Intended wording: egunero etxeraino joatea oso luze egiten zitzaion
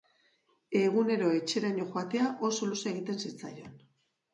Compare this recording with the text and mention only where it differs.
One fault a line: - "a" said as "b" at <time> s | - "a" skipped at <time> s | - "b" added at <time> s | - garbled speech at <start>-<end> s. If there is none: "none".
none